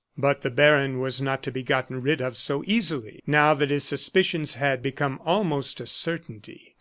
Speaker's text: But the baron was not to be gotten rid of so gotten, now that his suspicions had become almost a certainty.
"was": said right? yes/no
yes